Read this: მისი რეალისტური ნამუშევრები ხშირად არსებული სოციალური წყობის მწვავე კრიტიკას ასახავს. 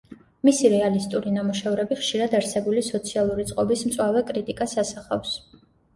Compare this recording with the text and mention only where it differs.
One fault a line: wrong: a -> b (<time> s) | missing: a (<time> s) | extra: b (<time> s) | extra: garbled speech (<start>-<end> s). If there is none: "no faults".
no faults